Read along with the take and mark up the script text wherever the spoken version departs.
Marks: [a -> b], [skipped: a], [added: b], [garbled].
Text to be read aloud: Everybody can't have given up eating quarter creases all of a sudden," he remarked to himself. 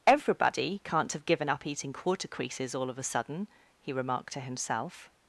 Everybody can't have given up eating quarter creases all of a sudden," he remarked to himself.